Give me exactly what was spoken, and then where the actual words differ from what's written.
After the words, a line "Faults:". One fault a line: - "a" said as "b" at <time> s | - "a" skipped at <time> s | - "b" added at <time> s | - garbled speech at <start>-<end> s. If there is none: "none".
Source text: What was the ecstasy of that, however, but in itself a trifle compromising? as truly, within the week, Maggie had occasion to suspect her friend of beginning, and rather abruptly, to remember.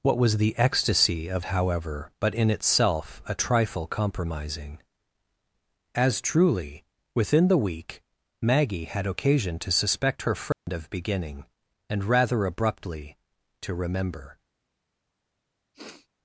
What was the ecstasy of however, but in itself a trifle compromising? as truly, within the week, Maggie had occasion to suspect her friend of beginning, and rather abruptly, to remember.
Faults:
- "that" skipped at 1.4 s